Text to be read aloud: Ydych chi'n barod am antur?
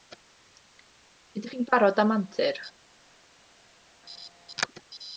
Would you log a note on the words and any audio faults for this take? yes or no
no